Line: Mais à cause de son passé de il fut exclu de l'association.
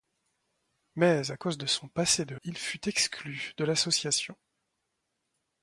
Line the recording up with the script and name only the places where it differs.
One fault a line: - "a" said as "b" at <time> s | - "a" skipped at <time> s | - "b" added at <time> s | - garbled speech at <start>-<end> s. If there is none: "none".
none